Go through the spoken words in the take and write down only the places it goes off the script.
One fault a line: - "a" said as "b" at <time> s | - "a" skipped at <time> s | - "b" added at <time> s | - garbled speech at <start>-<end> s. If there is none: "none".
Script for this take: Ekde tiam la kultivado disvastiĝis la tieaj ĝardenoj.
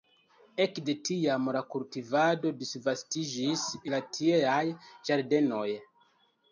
none